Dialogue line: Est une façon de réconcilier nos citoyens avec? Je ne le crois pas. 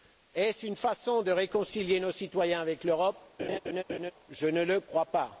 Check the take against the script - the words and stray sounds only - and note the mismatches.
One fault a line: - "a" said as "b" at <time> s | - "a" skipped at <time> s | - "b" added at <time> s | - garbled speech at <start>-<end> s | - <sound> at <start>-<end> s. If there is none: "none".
- "ce" added at 0.5 s
- "l'Europe" added at 2.8 s
- laugh at 3.4-4.1 s